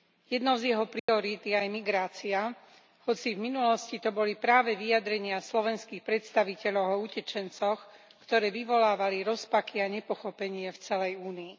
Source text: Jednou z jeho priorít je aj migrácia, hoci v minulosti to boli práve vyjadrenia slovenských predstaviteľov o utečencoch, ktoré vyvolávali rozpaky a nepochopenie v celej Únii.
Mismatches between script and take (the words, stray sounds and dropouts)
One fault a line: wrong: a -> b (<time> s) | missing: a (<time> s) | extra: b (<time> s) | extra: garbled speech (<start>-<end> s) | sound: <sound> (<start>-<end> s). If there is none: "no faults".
sound: dropout (1.0-1.1 s)